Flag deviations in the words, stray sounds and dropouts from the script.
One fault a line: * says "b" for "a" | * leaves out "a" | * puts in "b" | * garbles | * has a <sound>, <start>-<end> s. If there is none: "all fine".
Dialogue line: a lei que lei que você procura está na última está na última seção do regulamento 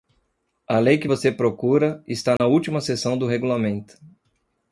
* leaves out "lei que"
* has a dropout, 2.4-2.4 s
* leaves out "está na última"